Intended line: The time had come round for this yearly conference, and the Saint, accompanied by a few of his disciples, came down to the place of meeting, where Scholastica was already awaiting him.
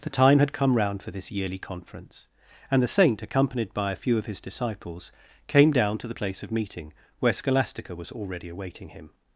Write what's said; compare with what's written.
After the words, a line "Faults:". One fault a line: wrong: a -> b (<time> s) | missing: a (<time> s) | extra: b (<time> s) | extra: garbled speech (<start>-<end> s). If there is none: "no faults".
The time had come round for this yearly conference, and the Saint, accompanied by a few of his disciples, came down to the place of meeting, where Scholastica was already awaiting him.
Faults:
no faults